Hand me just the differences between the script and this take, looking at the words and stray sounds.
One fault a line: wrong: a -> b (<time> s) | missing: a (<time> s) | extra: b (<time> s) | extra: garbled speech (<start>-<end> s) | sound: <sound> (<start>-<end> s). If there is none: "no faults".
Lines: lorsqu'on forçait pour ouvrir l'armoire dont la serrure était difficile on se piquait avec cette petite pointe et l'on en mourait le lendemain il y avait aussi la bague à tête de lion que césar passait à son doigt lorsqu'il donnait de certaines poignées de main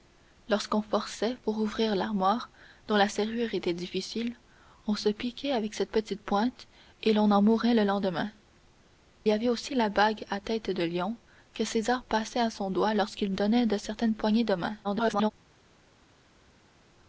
missing: il (8.3 s)
extra: garbled speech (14.8-15.3 s)